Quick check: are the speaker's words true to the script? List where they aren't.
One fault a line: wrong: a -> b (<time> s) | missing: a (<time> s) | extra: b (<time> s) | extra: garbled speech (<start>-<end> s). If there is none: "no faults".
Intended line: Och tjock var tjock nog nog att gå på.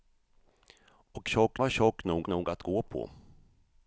no faults